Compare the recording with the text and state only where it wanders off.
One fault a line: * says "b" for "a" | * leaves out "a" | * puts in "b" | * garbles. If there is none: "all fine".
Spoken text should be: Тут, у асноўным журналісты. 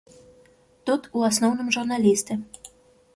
all fine